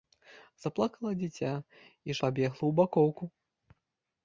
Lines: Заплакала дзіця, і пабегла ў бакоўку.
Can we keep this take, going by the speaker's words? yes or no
yes